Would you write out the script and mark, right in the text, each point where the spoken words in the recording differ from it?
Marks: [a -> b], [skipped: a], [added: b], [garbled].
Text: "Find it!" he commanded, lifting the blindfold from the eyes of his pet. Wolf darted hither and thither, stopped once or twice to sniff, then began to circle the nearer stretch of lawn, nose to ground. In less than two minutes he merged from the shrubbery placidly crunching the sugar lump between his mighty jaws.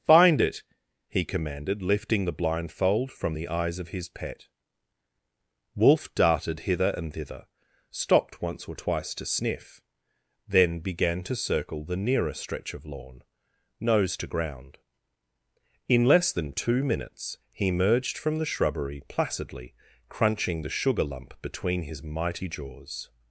"Find it!" he commanded, lifting the blindfold from the eyes of his pet. Wolf darted hither and thither, stopped once or twice to sniff, then began to circle the nearer stretch of lawn, nose to ground. In less than two minutes he [merged -> emerged] from the shrubbery placidly crunching the sugar lump between his mighty jaws.